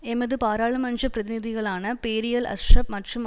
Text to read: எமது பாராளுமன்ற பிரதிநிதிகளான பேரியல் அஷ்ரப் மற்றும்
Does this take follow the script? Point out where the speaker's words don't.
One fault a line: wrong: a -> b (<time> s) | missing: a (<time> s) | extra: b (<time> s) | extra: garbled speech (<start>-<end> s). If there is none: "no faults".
no faults